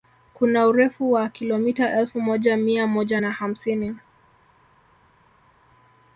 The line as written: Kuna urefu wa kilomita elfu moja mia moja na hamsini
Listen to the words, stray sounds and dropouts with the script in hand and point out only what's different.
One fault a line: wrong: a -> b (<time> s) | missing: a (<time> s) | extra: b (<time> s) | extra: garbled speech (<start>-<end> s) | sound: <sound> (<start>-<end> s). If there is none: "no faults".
no faults